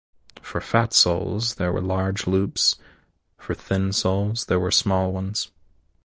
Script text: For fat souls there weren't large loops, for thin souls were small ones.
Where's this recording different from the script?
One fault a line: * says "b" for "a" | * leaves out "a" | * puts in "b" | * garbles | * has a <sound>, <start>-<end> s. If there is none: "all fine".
* says "were" for "weren't"
* puts in "there"